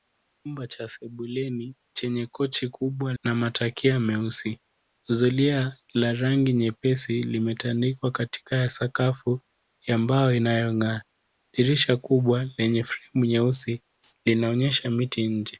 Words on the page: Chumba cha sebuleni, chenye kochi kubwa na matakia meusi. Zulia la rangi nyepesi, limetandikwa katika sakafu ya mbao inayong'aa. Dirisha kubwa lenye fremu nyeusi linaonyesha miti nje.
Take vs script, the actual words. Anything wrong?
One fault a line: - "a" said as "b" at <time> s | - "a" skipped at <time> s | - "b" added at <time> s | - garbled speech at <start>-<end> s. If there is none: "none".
none